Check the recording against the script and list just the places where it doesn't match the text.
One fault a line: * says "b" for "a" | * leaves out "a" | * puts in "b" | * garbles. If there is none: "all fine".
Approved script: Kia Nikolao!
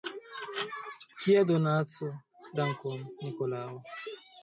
* puts in "donaco dankon"